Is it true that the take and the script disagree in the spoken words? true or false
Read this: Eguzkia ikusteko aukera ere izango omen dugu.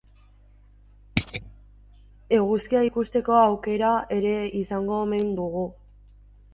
false